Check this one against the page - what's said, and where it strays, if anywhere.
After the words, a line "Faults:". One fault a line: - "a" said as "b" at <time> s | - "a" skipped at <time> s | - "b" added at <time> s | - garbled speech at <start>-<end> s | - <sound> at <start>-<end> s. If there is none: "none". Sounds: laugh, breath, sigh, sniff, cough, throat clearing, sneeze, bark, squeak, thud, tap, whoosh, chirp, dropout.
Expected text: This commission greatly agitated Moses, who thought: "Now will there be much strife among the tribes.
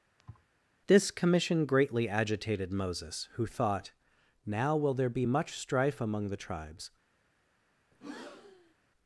This commission greatly agitated Moses, who thought: "Now will there be much strife among the tribes.
Faults:
- thud at 0.2-0.5 s
- breath at 7.9-8.7 s